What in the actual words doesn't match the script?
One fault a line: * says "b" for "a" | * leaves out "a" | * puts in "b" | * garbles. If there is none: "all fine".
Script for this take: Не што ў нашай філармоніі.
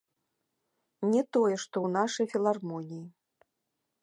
* puts in "тое"